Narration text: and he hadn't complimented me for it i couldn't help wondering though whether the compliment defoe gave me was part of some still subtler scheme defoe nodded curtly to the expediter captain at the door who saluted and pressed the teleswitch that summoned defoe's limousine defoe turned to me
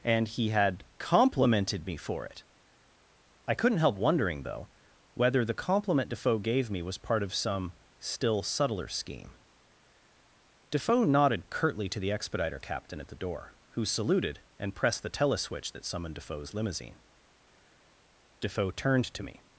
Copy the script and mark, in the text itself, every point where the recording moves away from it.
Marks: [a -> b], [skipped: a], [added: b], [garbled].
and he [hadn't -> had] complimented me for it i couldn't help wondering though whether the compliment defoe gave me was part of some still subtler scheme defoe nodded curtly to the expediter captain at the door who saluted and pressed the teleswitch that summoned defoe's limousine defoe turned to me